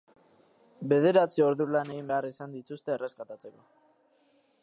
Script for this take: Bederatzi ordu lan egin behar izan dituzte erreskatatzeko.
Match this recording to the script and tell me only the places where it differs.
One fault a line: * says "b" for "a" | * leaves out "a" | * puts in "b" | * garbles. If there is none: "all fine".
all fine